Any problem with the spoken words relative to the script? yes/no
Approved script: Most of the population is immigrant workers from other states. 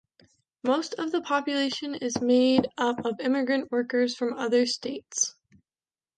yes